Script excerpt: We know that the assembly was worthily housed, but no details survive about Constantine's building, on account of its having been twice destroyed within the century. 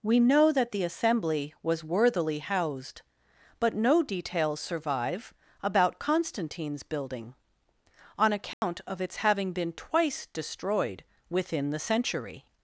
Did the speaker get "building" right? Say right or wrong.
right